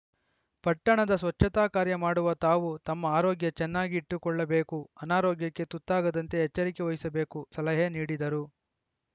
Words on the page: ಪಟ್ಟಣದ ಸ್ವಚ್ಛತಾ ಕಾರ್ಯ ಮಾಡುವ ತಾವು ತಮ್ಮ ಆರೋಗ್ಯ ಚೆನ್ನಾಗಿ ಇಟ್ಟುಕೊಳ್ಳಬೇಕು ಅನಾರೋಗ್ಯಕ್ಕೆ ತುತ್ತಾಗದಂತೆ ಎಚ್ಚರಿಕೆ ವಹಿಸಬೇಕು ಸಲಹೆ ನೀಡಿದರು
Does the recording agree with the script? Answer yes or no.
yes